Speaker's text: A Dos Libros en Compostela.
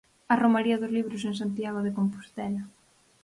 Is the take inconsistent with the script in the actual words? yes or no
yes